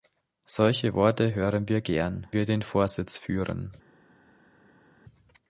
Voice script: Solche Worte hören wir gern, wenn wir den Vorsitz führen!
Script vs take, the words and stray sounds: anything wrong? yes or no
yes